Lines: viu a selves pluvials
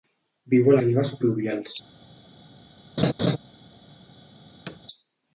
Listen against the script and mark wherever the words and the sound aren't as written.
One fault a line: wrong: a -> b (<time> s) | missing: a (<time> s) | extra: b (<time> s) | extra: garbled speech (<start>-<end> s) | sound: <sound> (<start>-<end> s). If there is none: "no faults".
sound: laugh (3.0-3.4 s)
sound: thud (4.7-4.8 s)